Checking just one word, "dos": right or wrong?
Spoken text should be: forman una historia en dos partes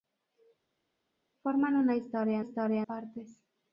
wrong